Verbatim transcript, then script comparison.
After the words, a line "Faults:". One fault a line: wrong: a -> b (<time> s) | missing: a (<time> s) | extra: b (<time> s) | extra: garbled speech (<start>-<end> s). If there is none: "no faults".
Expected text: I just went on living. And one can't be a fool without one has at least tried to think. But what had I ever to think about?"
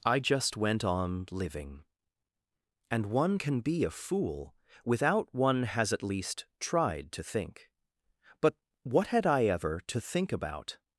I just went on living. And one can be a fool without one has at least tried to think. But what had I ever to think about?"
Faults:
wrong: can't -> can (3.4 s)